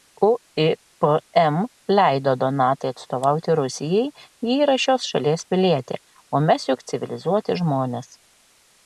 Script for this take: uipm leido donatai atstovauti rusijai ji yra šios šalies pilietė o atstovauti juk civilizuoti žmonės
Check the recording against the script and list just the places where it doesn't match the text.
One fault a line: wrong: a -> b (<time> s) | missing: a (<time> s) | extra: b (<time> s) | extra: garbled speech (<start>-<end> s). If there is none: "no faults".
wrong: atstovauti -> mes (6.5 s)